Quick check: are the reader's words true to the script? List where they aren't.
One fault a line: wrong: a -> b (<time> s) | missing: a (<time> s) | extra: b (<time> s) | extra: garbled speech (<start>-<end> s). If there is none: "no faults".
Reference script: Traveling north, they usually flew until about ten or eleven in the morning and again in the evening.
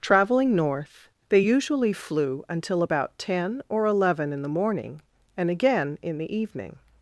no faults